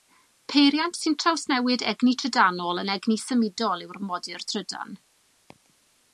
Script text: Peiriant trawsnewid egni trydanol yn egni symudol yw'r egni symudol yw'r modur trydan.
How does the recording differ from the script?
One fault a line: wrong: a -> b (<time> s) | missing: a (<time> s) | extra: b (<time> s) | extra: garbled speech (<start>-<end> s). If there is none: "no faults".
extra: sy'n (1.0 s)
missing: egni symudol yw'r (4.0 s)